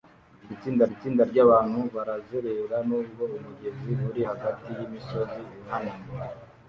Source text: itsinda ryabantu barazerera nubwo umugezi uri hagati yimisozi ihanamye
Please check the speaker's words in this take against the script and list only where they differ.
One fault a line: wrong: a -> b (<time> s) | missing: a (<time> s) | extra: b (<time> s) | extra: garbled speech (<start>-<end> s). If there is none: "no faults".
extra: itsinda (0.9 s)